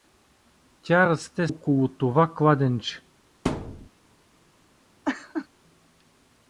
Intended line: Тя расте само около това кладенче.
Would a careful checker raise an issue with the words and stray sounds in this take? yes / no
yes